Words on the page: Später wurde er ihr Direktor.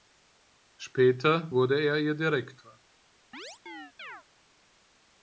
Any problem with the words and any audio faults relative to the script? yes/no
yes